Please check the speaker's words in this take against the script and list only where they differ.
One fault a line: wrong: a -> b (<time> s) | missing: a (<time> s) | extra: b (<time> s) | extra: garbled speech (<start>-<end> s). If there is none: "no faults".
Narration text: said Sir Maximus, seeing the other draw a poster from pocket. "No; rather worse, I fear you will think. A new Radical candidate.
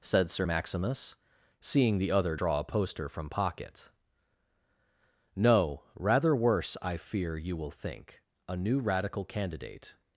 no faults